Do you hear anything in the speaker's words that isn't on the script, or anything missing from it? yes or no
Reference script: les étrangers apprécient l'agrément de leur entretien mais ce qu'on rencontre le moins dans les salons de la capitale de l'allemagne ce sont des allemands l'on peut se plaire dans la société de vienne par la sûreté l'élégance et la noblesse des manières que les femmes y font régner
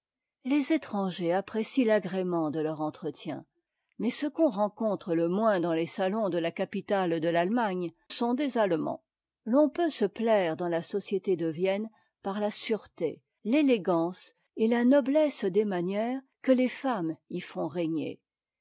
yes